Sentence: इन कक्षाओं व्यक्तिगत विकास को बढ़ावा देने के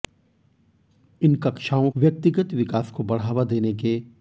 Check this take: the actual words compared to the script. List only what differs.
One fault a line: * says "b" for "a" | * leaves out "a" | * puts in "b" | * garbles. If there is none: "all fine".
all fine